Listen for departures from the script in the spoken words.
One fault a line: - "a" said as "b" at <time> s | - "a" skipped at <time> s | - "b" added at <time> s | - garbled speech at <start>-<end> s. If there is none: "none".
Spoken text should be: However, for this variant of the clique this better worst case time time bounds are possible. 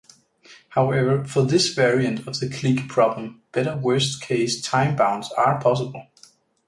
- "this" said as "problem" at 2.9 s
- "time" skipped at 5.0 s